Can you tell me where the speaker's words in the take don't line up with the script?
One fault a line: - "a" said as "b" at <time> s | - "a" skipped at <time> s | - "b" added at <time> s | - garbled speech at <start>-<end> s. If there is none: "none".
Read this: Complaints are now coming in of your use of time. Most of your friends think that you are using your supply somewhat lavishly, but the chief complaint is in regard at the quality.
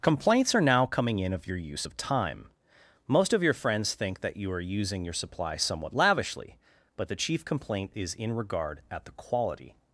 none